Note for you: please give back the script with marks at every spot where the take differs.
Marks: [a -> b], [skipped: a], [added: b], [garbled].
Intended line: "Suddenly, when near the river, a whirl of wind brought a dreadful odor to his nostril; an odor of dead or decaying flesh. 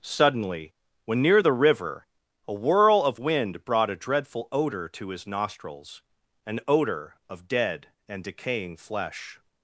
"Suddenly, when near the river, a whirl of wind brought a dreadful odor to his [nostril; -> nostrils] an odor of dead [or -> and] decaying flesh.